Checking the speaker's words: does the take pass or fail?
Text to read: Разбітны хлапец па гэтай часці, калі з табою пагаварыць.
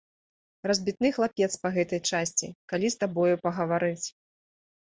pass